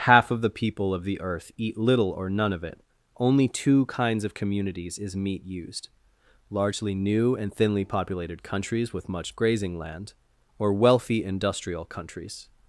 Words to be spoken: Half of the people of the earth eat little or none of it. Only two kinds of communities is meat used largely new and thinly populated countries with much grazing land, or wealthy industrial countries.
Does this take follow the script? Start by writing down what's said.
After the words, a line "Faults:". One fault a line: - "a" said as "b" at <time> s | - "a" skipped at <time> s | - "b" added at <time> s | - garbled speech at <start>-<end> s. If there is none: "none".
Half of the people of the earth eat little or none of it. Only two kinds of communities is meat used largely new and thinly populated countries with much grazing land, or wealthy industrial countries.
Faults:
none